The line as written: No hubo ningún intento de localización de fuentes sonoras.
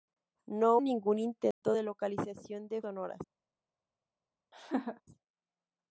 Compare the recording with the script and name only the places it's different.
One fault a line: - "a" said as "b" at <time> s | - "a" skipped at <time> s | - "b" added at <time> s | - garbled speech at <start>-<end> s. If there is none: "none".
- "hubo" skipped at 0.8 s
- "fuentes" skipped at 2.8 s